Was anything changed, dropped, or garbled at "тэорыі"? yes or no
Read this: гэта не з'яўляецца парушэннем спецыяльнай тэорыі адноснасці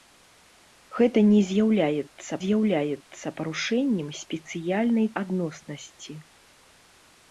yes